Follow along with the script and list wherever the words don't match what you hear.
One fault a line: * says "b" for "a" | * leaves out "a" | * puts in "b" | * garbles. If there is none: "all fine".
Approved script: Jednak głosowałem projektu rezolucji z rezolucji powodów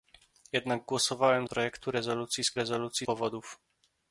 all fine